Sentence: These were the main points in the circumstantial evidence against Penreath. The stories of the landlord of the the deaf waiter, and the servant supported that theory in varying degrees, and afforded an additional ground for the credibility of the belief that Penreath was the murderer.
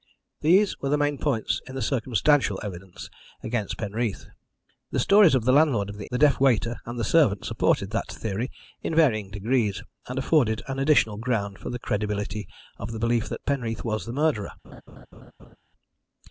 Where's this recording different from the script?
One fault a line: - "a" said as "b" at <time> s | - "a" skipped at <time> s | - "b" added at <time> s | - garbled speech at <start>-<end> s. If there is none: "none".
none